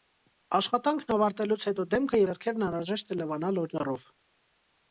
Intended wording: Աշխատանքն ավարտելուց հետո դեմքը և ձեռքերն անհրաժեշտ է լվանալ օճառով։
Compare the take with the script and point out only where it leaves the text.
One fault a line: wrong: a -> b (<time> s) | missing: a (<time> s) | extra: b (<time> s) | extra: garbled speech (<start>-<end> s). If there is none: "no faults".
missing: և (2.2 s)